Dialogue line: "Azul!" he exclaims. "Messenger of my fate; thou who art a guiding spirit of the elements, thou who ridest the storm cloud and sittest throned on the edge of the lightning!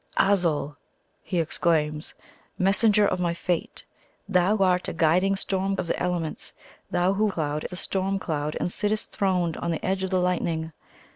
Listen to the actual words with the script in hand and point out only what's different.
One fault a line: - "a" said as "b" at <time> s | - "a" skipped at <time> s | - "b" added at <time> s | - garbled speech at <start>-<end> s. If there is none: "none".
- "who" skipped at 4.6 s
- "spirit" said as "storm" at 5.3 s
- "ridest" said as "cloud" at 7.3 s